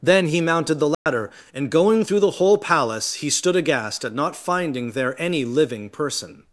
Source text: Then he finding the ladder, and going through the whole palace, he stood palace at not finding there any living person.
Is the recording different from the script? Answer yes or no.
yes